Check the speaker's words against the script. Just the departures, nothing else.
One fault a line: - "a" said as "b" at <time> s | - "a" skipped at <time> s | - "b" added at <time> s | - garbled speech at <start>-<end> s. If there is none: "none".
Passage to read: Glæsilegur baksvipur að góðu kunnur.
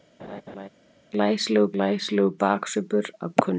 - "glæsilegur" added at 1.7 s
- "góðu" skipped at 3.3 s